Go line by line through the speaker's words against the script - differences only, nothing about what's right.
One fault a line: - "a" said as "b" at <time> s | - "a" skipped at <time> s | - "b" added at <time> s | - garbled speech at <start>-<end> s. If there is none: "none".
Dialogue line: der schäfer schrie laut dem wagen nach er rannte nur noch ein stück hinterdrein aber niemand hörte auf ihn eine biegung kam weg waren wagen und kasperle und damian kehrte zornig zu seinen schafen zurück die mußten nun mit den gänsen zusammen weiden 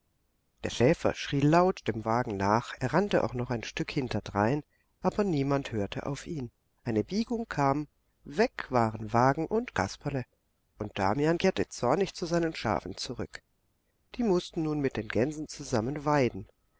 - "nur" said as "auch" at 3.2 s